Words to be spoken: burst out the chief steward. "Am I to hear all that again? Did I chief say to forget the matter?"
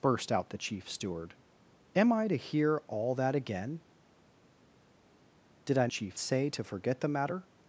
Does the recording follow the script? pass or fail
pass